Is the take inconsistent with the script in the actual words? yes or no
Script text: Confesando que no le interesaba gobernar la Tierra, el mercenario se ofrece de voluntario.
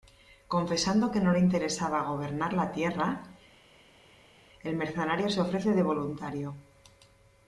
no